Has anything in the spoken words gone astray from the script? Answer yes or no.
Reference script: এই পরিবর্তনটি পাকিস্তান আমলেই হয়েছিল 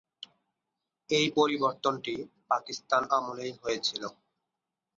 no